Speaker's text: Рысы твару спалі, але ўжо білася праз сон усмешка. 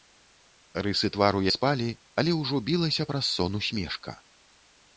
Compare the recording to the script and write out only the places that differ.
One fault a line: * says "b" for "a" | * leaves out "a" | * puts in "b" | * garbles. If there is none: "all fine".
all fine